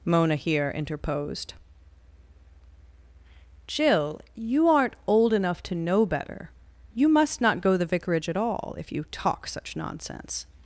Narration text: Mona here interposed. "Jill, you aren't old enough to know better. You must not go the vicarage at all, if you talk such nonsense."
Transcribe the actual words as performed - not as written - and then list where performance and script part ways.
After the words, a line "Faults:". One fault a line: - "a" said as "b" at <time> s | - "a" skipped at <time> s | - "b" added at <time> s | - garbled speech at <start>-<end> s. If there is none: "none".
Mona here interposed. "Jill, you aren't old enough to know better. You must not go the vicarage at all, if you talk such nonsense."
Faults:
none